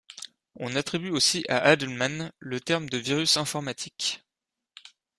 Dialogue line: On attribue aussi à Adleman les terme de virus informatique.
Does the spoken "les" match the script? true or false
false